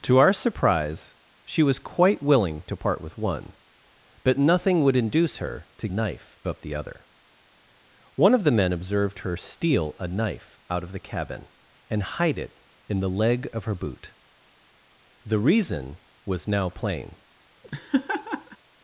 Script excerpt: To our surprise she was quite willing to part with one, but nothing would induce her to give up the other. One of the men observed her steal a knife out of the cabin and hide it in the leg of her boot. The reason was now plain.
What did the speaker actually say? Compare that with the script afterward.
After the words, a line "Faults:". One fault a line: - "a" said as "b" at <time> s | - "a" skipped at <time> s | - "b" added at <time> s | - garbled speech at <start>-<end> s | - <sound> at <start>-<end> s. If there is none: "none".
To our surprise she was quite willing to part with one, but nothing would induce her to knife up the other. One of the men observed her steal a knife out of the cabin and hide it in the leg of her boot. The reason was now plain.
Faults:
- "give" said as "knife" at 5.9 s
- laugh at 17.6-18.6 s